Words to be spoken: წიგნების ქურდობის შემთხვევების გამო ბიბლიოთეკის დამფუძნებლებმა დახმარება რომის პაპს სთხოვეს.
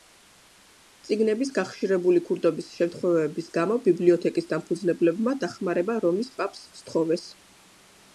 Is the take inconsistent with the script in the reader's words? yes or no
yes